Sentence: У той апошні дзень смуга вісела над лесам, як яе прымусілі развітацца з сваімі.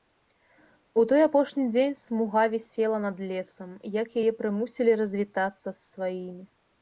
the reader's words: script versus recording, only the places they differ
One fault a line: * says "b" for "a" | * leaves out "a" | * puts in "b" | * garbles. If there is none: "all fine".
all fine